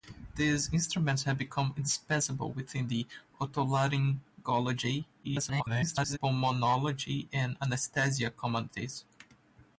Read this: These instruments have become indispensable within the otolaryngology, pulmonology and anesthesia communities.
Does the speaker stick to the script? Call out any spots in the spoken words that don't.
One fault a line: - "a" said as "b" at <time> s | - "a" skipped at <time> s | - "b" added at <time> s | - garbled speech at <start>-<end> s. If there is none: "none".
- garbled speech at 5.2-6.2 s